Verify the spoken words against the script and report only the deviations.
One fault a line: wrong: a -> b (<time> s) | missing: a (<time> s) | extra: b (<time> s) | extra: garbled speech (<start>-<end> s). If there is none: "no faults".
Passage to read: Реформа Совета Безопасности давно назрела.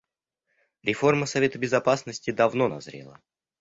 no faults